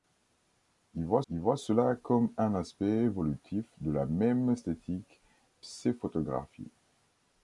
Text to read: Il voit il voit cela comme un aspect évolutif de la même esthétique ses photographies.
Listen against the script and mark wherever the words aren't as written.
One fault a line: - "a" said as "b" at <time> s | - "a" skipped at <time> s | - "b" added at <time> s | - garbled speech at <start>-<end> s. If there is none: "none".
none